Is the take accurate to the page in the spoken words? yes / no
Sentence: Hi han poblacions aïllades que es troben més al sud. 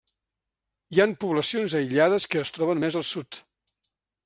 yes